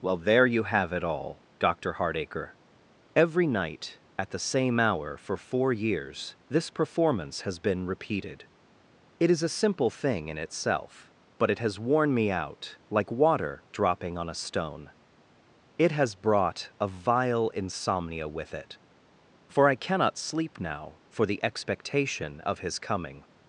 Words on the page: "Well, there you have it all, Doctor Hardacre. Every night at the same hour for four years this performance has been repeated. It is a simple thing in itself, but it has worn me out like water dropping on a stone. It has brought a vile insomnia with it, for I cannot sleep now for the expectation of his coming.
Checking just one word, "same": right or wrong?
right